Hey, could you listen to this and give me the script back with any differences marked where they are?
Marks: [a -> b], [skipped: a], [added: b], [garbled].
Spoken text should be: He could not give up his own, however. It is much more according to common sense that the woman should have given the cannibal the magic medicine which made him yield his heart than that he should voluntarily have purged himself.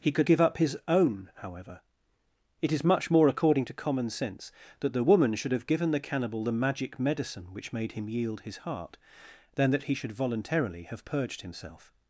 He could [skipped: not] give up his own, however. It is much more according to common sense that the woman should have given the cannibal the magic medicine which made him yield his heart than that he should voluntarily have purged himself.